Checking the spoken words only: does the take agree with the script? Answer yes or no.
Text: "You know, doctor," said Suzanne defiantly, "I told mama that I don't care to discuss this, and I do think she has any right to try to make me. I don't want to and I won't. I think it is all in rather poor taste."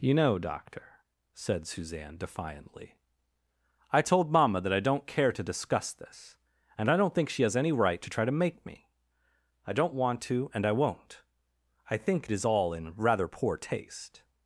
no